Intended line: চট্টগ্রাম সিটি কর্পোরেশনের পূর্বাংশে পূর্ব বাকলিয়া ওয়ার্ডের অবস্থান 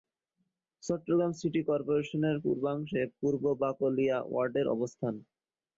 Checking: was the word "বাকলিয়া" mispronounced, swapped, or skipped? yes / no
no